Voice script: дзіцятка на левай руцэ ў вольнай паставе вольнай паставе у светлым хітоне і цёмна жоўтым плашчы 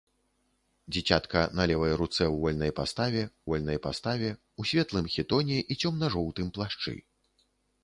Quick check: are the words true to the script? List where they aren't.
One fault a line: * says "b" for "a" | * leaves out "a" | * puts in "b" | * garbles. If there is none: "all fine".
all fine